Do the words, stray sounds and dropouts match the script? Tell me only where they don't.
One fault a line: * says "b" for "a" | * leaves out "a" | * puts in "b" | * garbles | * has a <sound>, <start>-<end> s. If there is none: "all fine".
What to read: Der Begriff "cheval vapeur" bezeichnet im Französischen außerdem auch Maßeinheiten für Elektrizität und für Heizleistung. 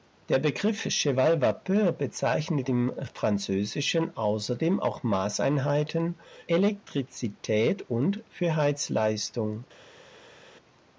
* leaves out "für"